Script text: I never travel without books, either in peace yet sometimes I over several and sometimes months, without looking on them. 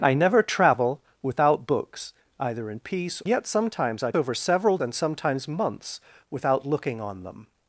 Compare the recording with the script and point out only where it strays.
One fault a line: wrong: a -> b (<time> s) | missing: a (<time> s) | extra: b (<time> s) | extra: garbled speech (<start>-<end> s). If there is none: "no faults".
no faults